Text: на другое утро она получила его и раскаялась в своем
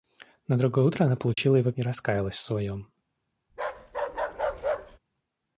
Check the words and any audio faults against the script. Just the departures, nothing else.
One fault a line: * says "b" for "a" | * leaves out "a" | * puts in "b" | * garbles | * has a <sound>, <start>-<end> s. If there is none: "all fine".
* has a dropout, 1.3-1.4 s
* has a bark, 3.5-5.0 s